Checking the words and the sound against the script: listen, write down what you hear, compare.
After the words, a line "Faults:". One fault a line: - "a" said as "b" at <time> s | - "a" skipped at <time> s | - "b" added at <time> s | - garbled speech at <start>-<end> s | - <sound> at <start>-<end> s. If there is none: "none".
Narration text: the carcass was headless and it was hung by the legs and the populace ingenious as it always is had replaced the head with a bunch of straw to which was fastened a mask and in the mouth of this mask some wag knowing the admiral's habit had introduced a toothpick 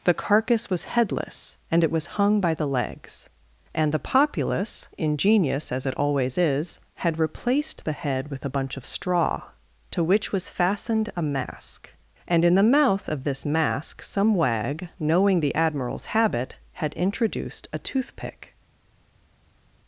the carcass was headless and it was hung by the legs and the populace ingenious as it always is had replaced the head with a bunch of straw to which was fastened a mask and in the mouth of this mask some wag knowing the admiral's habit had introduced a toothpick
Faults:
none